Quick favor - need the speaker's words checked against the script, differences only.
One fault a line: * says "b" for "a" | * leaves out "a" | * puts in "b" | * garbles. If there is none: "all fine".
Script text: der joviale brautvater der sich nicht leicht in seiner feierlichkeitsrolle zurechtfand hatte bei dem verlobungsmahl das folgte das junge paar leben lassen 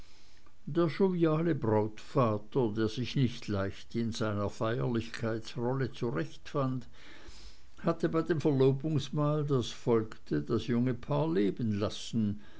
all fine